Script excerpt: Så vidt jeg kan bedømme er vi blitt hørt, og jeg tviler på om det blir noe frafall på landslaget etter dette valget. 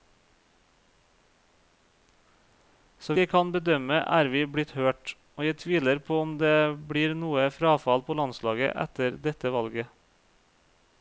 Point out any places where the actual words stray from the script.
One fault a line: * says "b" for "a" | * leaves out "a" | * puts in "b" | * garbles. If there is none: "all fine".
* leaves out "vidt"